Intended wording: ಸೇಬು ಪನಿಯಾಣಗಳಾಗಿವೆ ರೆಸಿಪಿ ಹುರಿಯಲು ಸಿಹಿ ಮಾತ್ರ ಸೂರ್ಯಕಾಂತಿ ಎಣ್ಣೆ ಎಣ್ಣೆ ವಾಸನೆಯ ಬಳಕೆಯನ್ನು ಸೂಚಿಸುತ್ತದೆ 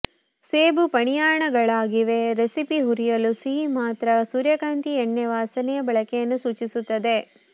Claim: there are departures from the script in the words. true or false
true